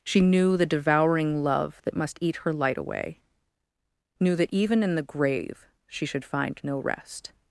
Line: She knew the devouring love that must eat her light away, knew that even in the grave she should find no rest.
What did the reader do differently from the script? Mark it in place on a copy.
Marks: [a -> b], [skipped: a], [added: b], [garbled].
She knew the devouring love that must eat her light away, knew that even in the grave she should find no rest.